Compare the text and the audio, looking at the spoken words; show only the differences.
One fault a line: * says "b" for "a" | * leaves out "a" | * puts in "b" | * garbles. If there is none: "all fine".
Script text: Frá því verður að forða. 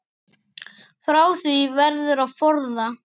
all fine